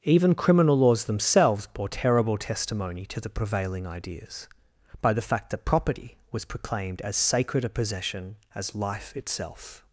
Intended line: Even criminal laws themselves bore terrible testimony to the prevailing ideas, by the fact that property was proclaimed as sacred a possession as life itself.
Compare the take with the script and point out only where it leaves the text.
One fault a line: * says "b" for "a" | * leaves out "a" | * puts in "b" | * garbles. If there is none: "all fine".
all fine